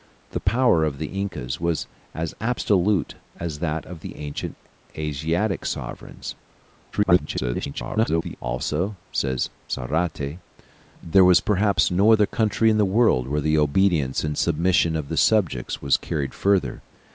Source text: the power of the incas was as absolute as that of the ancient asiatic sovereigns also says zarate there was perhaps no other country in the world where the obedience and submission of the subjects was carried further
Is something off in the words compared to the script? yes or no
yes